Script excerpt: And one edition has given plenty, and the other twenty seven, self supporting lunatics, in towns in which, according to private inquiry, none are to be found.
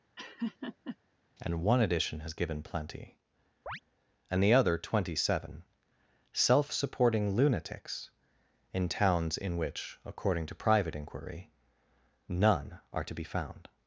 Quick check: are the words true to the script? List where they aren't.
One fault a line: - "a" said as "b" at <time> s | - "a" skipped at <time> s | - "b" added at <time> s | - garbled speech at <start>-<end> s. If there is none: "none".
none